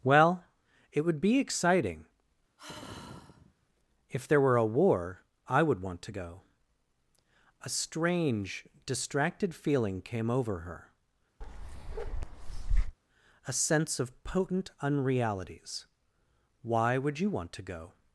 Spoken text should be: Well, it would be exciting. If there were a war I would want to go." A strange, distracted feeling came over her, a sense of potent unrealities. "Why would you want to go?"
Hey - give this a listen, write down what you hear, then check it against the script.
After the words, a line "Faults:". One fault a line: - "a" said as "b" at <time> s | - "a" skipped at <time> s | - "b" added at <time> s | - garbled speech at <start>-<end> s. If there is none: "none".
Well, it would be exciting. If there were a war I would want to go." A strange, distracted feeling came over her, a sense of potent unrealities. "Why would you want to go?"
Faults:
none